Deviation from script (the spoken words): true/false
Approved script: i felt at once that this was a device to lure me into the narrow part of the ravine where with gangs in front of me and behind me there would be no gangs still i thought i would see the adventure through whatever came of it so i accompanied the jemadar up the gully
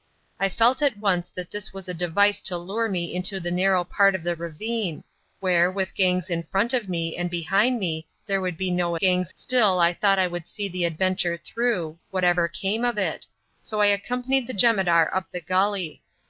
false